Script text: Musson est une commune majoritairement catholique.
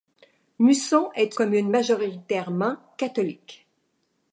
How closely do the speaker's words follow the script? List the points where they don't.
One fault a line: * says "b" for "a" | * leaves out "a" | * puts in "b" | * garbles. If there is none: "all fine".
* leaves out "une"